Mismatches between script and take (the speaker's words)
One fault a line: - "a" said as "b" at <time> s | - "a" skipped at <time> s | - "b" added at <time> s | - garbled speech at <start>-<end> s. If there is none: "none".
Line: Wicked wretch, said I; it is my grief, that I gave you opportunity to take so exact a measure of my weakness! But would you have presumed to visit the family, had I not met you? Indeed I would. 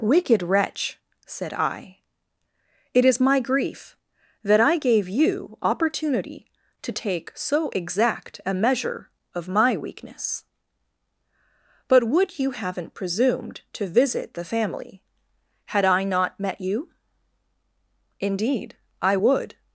- "have" said as "haven't" at 12.5 s